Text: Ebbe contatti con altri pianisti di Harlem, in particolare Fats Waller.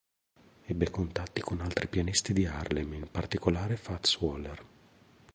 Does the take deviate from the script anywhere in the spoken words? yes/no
no